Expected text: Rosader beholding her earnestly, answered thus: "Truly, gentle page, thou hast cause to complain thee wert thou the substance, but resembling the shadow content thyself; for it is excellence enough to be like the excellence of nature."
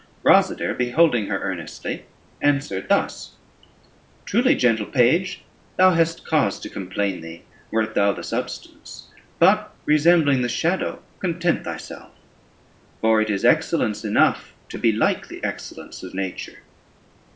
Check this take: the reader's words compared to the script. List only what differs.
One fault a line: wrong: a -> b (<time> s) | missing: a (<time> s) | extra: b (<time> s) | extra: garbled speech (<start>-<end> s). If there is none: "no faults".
no faults